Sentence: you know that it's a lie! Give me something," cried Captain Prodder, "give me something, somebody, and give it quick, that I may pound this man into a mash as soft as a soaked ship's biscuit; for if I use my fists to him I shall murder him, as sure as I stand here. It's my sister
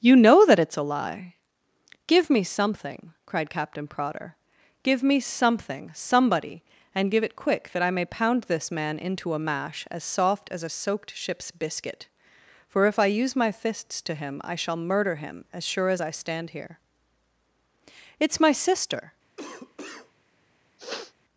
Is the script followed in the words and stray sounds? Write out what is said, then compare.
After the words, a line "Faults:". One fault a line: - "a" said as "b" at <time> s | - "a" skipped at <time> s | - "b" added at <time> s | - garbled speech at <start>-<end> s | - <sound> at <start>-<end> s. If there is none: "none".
you know that it's a lie! Give me something," cried Captain Prodder, "give me something, somebody, and give it quick, that I may pound this man into a mash as soft as a soaked ship's biscuit; for if I use my fists to him I shall murder him, as sure as I stand here. It's my sister
Faults:
- cough at 19.4-20.1 s
- sniff at 20.8-21.1 s